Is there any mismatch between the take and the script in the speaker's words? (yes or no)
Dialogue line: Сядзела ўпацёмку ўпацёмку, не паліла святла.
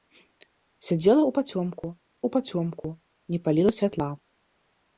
no